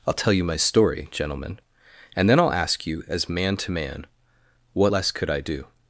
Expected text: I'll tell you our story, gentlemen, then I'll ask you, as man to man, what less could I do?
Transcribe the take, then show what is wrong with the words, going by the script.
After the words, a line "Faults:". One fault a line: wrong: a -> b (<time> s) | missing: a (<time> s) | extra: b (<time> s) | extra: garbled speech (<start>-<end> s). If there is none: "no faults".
I'll tell you my story, gentlemen, and then I'll ask you, as man to man, what less could I do?
Faults:
wrong: our -> my (0.4 s)
extra: and (2.1 s)